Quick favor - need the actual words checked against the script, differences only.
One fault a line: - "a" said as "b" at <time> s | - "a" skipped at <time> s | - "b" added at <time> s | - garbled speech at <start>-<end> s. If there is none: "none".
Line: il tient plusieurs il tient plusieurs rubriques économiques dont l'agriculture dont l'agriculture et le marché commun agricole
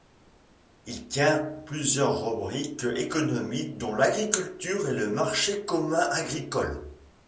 - "il tient plusieurs" skipped at 2.2 s
- "dont l'agriculture" skipped at 4.9 s